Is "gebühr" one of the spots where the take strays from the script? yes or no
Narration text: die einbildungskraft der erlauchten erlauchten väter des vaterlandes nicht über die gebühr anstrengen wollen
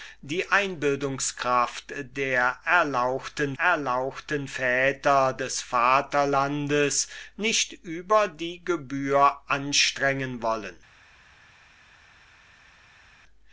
no